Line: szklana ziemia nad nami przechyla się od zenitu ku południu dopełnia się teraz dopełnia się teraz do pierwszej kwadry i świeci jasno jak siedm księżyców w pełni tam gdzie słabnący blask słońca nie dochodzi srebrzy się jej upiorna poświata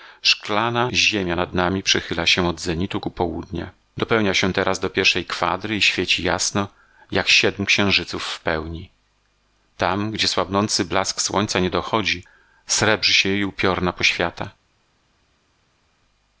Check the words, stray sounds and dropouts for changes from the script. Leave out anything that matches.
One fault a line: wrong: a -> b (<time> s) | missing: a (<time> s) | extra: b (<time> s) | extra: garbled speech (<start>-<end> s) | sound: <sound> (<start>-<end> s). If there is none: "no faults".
missing: dopełnia się teraz (4.8 s)